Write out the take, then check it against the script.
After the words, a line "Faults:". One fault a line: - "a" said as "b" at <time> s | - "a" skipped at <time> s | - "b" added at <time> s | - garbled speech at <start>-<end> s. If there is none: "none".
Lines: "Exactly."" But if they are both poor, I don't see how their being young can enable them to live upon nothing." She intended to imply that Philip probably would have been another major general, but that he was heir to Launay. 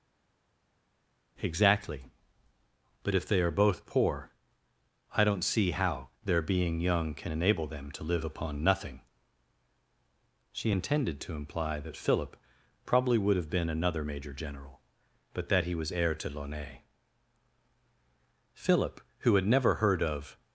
"Exactly."" But if they are both poor, I don't see how their being young can enable them to live upon nothing." She intended to imply that Philip probably would have been another major general, but that he was heir to Launay. Philip, who had never heard of
Faults:
- "Philip who had never heard of" added at 18.5 s